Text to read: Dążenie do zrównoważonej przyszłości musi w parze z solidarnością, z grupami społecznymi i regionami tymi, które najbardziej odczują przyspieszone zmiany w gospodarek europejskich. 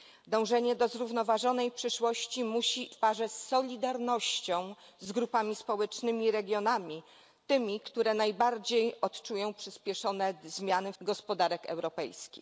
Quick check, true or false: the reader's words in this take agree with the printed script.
true